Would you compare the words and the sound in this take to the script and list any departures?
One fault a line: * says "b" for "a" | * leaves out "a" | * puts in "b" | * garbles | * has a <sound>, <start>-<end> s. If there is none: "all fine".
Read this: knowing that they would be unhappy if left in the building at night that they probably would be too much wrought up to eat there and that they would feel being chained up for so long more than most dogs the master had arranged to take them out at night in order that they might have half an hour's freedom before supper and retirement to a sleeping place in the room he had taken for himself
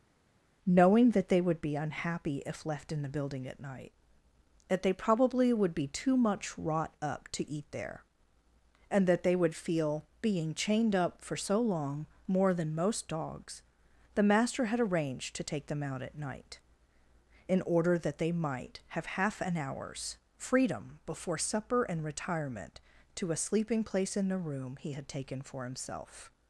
all fine